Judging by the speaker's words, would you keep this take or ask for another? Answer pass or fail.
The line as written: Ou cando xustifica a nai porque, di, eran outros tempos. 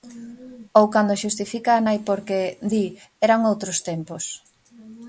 pass